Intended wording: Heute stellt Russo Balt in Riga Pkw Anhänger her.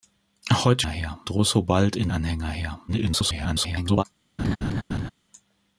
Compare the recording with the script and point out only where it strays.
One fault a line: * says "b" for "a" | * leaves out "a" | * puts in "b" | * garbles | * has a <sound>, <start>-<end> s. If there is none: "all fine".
* says "her" for "stellt"
* leaves out "Riga Pkw"
* garbles
* has a laugh, 4.4-5.1 s